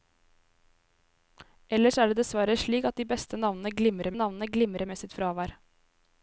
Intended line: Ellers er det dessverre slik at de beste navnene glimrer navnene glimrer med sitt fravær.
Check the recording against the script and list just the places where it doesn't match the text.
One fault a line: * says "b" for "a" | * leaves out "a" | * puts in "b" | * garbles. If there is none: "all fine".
all fine